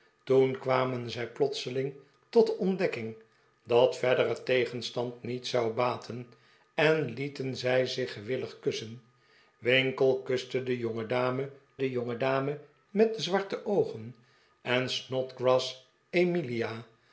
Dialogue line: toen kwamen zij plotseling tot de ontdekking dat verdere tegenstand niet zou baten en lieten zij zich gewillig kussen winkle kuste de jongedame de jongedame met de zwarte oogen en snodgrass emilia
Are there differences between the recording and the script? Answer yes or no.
no